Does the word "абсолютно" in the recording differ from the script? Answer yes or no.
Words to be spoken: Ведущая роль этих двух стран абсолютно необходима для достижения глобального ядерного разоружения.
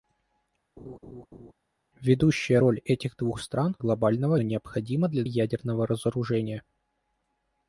yes